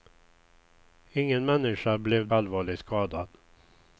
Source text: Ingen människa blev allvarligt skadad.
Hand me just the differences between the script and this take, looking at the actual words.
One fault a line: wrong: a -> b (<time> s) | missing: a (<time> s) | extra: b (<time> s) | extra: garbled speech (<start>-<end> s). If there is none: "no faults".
no faults